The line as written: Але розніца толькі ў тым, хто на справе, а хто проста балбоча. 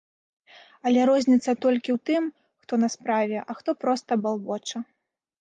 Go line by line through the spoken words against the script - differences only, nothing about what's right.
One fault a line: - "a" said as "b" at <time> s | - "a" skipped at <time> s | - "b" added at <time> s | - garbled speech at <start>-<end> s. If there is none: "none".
none